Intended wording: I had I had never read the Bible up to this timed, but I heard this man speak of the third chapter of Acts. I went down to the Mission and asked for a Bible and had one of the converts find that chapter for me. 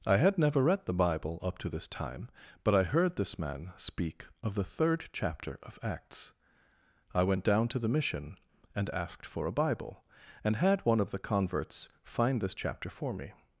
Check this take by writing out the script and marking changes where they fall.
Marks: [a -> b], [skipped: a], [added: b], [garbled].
I had [skipped: I had] never read the Bible up to this [timed, -> time] but I heard this man speak of the third chapter of Acts. I went down to the Mission and asked for a Bible and had one of the converts find [that -> this] chapter for me.